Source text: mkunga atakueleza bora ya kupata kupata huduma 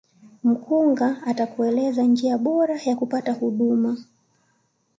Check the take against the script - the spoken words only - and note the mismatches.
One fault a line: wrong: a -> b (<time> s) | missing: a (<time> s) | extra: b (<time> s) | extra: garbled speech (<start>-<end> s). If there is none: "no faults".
extra: njia (2.0 s)
missing: kupata (3.3 s)